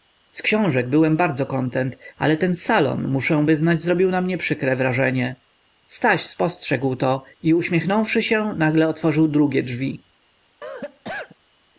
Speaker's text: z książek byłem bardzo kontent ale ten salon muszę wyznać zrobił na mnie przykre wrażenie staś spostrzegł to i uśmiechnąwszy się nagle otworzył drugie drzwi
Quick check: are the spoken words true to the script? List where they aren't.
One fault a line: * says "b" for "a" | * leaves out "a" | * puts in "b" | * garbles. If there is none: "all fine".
all fine